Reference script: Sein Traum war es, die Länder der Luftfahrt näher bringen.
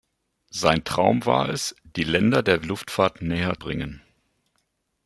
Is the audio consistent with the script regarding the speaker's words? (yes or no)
yes